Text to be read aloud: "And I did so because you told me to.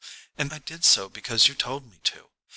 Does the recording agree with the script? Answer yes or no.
yes